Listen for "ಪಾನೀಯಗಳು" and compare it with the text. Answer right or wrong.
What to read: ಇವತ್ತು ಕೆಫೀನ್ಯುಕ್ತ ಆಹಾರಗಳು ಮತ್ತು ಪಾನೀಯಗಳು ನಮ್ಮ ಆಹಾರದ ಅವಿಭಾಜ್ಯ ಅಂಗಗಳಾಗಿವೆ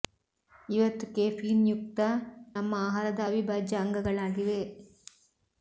wrong